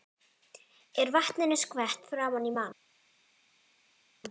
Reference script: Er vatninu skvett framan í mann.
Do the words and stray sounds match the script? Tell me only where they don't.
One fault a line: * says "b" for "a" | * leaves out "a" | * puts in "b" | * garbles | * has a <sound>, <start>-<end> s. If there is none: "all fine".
all fine